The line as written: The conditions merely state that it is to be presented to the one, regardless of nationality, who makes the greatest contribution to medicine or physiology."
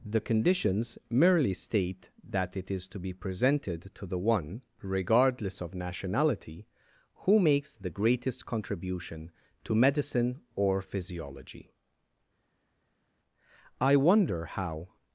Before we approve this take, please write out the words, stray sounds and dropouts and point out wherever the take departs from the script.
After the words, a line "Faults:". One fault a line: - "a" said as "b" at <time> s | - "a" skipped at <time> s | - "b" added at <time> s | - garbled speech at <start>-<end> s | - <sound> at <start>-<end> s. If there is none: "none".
The conditions merely state that it is to be presented to the one, regardless of nationality, who makes the greatest contribution to medicine or physiology." "I wonder how
Faults:
- "I wonder how" added at 13.8 s